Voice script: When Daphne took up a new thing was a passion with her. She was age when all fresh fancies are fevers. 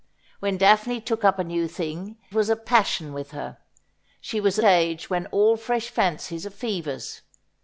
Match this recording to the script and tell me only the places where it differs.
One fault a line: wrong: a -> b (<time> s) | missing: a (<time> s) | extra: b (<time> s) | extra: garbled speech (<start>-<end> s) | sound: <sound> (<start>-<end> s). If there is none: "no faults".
no faults